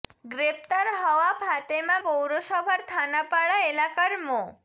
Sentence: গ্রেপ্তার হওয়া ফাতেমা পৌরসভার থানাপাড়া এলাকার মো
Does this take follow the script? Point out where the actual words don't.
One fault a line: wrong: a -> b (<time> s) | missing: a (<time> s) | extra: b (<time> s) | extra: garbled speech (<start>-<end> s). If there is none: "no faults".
no faults